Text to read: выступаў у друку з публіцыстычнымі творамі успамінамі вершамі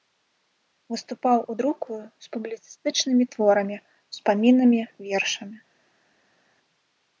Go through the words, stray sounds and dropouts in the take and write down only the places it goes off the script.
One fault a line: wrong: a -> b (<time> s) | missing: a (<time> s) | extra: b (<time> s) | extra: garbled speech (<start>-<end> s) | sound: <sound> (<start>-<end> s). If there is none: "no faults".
no faults